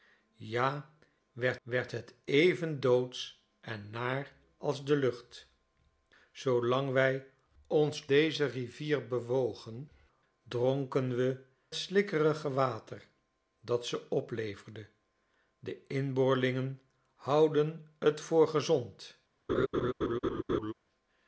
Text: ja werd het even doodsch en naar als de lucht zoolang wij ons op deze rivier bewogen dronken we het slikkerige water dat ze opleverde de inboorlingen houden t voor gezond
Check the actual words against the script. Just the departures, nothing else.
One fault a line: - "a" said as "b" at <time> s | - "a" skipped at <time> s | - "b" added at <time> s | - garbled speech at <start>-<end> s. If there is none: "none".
- "werd" added at 1.6 s
- "op" skipped at 8.1 s
- "het" skipped at 11.4 s